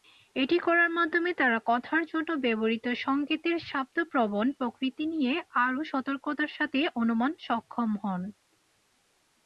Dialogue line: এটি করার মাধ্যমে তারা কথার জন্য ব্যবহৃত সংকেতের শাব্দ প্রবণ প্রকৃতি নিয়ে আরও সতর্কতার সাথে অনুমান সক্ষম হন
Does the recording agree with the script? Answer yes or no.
yes